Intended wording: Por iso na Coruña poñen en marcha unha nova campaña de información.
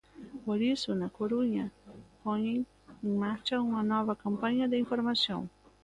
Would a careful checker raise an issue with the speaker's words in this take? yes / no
no